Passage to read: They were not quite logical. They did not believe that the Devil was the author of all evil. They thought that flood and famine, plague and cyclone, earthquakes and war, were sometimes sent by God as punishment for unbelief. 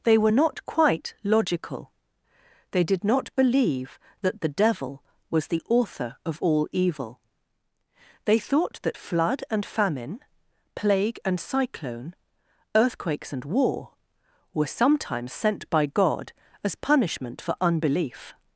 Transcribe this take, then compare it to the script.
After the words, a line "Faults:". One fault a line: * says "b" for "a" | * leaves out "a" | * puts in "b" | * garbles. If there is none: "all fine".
They were not quite logical. They did not believe that the Devil was the author of all evil. They thought that flood and famine, plague and cyclone, earthquakes and war, were sometimes sent by God as punishment for unbelief.
Faults:
all fine